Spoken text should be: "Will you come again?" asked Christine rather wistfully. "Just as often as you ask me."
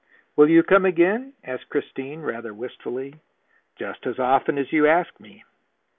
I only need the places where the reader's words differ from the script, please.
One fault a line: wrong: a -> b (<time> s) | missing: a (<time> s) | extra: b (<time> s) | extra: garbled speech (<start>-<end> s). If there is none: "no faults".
no faults